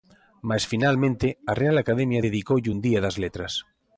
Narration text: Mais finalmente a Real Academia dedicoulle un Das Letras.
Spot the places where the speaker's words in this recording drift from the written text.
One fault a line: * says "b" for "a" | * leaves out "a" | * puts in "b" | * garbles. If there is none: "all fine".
* puts in "Día"